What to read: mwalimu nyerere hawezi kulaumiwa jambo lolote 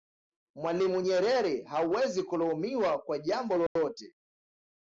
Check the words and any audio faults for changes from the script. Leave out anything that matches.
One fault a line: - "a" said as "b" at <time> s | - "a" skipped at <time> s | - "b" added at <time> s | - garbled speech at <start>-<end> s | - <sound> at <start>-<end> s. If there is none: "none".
- "kwa" added at 3.0 s
- dropout at 3.7-3.8 s